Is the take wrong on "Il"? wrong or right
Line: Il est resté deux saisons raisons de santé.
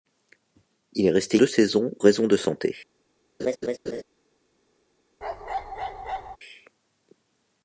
right